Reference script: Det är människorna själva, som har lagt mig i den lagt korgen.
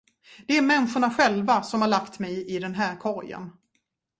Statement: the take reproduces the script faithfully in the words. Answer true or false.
false